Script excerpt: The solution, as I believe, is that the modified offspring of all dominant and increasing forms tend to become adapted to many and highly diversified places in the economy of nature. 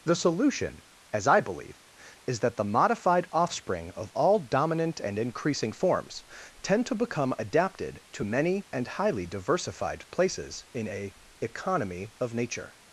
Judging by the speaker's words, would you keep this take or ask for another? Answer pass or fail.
fail